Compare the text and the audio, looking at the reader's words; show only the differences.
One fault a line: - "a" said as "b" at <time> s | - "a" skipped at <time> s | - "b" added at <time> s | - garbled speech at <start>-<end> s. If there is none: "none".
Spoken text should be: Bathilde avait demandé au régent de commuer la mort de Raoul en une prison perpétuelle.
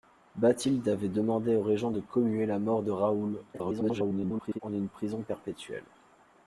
- garbled speech at 3.5-4.6 s